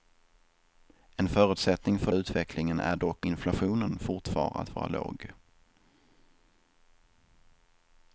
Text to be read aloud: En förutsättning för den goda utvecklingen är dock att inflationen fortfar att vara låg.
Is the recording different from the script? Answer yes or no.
yes